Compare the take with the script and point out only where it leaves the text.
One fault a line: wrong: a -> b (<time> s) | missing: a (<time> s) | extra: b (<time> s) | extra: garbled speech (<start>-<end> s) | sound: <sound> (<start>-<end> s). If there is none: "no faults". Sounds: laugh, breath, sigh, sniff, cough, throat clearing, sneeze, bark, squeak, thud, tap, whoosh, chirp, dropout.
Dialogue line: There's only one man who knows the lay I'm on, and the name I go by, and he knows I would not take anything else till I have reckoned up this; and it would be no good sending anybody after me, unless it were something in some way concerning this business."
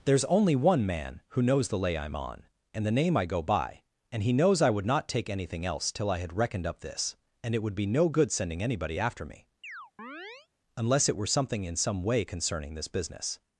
wrong: have -> had (6.2 s)
sound: chirp (9.6-10.5 s)